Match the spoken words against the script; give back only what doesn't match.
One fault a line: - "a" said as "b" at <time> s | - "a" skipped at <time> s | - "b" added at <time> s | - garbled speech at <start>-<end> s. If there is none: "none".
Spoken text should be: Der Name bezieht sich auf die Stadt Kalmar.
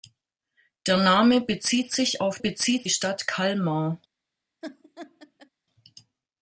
- "die" said as "bezieht" at 2.4 s